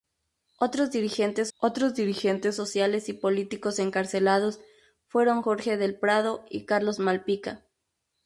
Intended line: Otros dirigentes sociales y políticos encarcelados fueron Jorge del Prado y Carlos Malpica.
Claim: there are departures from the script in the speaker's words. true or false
true